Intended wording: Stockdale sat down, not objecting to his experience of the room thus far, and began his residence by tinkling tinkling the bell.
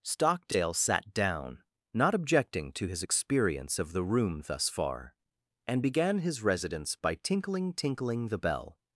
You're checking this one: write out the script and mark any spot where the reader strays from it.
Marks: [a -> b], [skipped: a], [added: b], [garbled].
Stockdale sat down, not objecting to his experience of the room thus far, and began his residence by tinkling tinkling the bell.